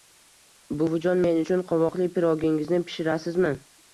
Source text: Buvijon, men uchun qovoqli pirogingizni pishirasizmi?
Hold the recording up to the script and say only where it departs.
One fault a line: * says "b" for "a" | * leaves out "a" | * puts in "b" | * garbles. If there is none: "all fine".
all fine